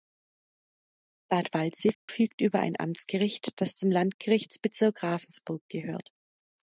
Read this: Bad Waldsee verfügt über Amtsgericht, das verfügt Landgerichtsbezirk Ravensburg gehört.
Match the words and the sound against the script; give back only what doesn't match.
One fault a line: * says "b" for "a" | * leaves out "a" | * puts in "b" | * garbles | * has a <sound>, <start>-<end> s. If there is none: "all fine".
* has a dropout, 1.9-2.1 s
* puts in "ein"
* says "zum" for "verfügt"